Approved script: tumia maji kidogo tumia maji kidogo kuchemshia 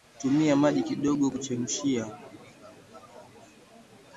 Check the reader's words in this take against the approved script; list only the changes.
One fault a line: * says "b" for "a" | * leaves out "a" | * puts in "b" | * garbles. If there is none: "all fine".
* leaves out "tumia maji kidogo"